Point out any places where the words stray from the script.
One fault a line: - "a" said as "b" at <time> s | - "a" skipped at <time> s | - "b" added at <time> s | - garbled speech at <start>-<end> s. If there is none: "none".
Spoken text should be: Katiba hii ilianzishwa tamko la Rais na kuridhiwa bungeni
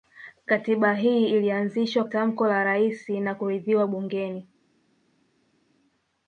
none